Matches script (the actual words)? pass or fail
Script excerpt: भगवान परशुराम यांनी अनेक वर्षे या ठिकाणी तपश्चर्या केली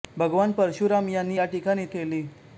fail